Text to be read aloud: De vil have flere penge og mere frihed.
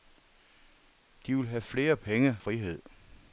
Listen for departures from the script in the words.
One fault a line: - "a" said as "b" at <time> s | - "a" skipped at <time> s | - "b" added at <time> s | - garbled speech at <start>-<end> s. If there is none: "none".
- "og mere" skipped at 2.4 s